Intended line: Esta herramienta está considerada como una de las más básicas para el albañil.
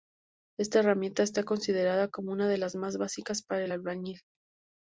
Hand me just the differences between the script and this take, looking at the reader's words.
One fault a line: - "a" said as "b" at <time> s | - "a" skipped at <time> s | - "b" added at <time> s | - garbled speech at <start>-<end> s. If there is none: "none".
none